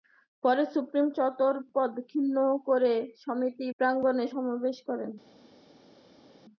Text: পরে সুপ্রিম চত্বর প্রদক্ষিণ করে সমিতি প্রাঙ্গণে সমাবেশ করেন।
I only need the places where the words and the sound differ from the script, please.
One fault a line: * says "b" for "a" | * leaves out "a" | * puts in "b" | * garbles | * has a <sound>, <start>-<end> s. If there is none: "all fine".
all fine